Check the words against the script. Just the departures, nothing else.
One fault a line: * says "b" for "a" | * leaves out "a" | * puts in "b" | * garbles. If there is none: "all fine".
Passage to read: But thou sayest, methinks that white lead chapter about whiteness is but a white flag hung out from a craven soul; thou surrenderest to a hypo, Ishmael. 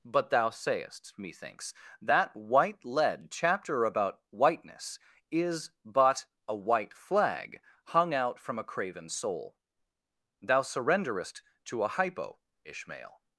all fine